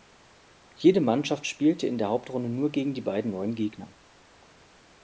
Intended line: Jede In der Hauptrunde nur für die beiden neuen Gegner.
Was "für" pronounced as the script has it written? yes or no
no